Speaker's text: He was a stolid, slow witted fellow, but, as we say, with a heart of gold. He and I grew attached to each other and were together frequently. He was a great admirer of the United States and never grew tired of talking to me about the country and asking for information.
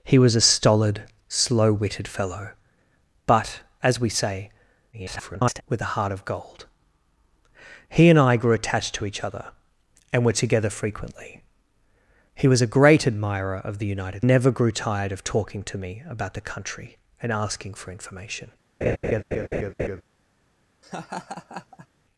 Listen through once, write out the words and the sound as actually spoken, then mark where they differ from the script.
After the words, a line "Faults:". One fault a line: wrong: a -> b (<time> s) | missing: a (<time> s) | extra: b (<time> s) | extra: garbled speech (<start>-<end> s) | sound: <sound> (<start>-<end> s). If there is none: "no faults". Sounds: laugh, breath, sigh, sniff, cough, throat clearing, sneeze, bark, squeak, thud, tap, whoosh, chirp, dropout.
He was a stolid, slow witted fellow, but, as we say, [garbled] with a heart of gold. He and I grew attached to each other and were together frequently. He was a great admirer of the United Never grew tired of talking to me about the country and asking for information.
Faults:
extra: garbled speech (4.9-5.6 s)
missing: States and (14.3 s)
sound: laugh (18.8-20.0 s)
sound: laugh (20.8-21.9 s)